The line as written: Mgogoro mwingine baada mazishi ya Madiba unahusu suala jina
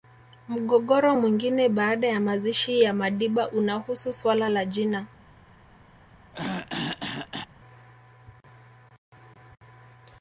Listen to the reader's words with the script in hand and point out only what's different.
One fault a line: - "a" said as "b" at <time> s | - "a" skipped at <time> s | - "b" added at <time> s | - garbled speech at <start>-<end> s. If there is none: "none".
- "ya" added at 2.1 s
- "la" added at 4.5 s